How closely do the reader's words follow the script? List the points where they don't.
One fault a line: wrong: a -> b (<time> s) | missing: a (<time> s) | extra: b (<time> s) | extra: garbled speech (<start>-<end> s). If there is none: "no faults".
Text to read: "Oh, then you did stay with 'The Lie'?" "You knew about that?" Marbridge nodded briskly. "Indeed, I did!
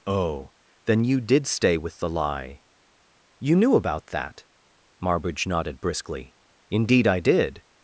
no faults